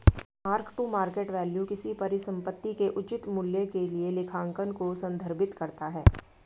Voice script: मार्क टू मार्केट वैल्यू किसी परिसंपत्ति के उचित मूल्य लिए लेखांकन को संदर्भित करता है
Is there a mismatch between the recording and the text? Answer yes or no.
yes